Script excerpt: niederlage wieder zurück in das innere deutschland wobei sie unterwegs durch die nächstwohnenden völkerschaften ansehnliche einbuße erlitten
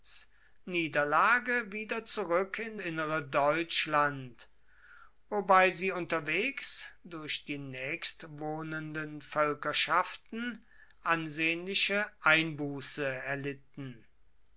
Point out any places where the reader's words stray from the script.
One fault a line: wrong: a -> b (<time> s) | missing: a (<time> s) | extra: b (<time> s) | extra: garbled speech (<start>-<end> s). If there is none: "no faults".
missing: das (2.8 s)